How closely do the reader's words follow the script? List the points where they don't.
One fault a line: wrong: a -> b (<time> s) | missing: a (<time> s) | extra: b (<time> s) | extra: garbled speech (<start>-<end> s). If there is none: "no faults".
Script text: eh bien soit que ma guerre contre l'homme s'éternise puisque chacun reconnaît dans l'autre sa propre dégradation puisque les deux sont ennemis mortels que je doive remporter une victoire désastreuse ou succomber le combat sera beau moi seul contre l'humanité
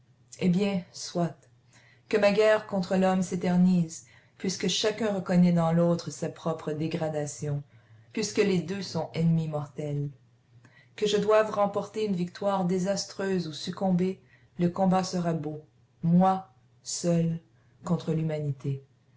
no faults